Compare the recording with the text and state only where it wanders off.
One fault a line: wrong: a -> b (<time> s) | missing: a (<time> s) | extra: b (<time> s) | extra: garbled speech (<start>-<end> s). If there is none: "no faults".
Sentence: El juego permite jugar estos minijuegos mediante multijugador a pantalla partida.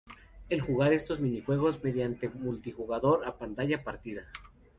missing: juego permite (0.6 s)